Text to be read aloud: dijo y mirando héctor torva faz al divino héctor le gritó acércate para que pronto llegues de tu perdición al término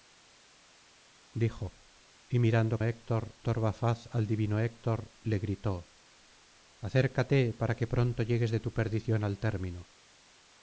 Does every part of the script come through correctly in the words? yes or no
yes